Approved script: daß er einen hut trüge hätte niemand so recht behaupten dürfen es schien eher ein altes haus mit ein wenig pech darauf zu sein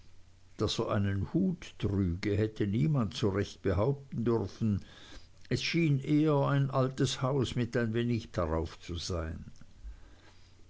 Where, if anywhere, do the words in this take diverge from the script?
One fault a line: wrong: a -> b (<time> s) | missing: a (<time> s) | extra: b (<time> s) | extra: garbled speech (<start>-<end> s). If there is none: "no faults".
missing: pech (8.3 s)